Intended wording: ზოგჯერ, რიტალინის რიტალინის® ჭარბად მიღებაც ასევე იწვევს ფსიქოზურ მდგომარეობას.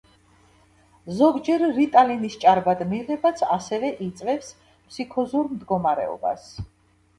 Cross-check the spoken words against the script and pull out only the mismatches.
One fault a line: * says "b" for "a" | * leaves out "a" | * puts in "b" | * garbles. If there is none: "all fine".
* leaves out "რიტალინის"